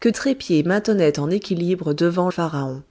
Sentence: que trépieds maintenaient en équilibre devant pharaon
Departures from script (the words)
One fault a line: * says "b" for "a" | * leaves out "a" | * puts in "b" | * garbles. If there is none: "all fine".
all fine